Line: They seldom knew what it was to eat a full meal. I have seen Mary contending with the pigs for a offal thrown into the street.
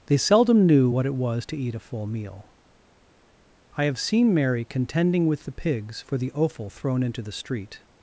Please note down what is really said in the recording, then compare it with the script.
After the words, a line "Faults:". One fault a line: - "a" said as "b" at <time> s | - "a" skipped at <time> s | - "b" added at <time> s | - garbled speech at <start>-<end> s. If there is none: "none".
They seldom knew what it was to eat a full meal. I have seen Mary contending with the pigs for the offal thrown into the street.
Faults:
- "a" said as "the" at 6.2 s